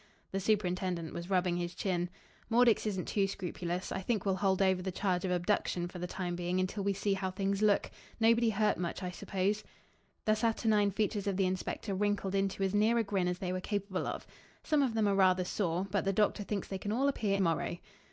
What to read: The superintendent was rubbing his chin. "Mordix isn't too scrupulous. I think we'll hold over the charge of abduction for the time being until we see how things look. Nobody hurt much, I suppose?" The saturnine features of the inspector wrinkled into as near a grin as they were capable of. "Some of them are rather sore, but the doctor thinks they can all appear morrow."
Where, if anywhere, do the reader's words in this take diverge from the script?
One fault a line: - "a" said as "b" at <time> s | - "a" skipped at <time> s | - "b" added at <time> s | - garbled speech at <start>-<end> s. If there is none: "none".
none